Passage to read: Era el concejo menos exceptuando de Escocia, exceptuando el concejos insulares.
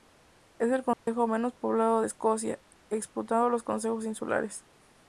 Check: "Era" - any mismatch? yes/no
yes